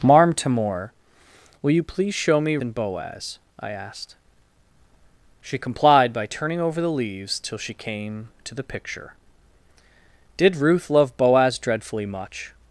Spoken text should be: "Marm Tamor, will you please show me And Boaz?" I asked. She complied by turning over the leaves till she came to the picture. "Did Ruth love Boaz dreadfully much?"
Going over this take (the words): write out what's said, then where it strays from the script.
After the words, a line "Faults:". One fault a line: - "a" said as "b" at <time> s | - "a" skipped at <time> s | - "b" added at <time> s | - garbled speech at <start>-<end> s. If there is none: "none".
"Marm Tamor, will you please show me And Boaz?" I asked. She complied by turning over the leaves till she came to the picture. "Did Ruth love Boaz dreadfully much?"
Faults:
none